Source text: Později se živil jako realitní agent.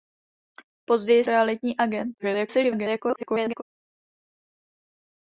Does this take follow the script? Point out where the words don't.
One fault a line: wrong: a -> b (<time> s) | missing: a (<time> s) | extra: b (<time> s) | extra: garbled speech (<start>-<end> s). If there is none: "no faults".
missing: se živil jako (1.2 s)
extra: garbled speech (2.2-3.6 s)